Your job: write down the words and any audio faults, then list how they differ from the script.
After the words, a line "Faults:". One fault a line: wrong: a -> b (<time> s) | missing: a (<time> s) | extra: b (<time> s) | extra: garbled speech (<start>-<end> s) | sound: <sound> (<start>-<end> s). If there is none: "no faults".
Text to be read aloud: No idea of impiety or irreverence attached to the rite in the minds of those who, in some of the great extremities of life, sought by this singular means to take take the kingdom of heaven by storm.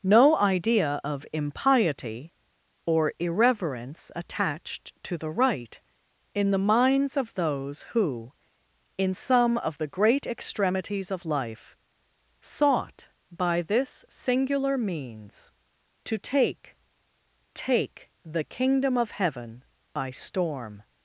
No idea of impiety or irreverence attached to the rite in the minds of those who, in some of the great extremities of life, sought by this singular means to take take the kingdom of heaven by storm.
Faults:
no faults